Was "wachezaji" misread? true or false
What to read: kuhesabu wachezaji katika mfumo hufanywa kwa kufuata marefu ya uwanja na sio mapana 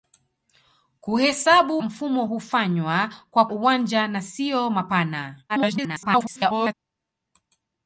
true